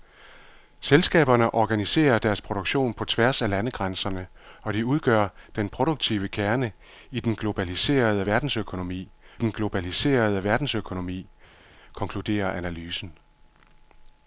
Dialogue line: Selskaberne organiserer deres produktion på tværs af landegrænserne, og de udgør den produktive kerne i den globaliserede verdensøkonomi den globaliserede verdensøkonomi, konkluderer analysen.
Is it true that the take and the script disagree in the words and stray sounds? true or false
false